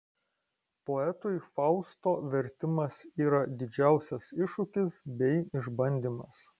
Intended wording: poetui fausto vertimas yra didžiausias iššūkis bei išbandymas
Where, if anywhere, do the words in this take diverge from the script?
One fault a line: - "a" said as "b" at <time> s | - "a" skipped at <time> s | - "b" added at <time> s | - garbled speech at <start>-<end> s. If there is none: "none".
none